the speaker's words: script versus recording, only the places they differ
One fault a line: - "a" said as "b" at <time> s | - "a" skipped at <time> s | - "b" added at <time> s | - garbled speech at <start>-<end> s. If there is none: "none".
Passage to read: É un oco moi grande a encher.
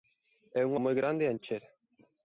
- "oco" skipped at 0.7 s